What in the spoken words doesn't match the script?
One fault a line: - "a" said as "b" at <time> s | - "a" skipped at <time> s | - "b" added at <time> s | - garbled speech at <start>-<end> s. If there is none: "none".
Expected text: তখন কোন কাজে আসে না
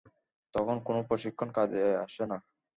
- "প্রশিক্ষণ" added at 1.1 s